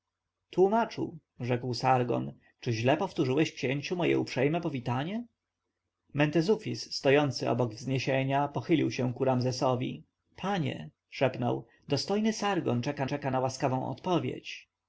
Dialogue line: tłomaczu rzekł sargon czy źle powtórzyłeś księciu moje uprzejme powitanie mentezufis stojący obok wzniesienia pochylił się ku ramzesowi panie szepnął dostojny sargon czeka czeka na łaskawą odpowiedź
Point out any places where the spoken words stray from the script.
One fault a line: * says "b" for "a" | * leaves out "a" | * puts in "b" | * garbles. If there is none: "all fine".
all fine